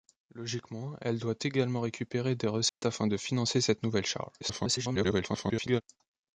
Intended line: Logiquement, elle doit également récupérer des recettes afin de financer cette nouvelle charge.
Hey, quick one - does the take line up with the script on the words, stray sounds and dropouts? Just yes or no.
no